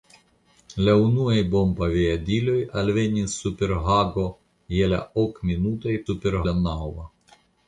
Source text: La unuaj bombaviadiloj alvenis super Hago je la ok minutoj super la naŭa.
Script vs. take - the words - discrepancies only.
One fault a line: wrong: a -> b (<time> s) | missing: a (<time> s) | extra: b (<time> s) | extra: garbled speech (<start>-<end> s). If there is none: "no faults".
no faults